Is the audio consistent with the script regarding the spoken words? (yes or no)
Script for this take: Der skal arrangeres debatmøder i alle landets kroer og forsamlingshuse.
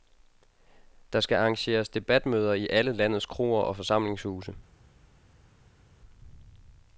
yes